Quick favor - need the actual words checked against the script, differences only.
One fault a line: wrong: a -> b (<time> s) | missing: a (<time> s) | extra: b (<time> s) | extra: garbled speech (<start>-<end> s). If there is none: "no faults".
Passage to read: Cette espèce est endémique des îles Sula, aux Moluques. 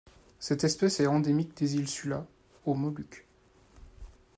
no faults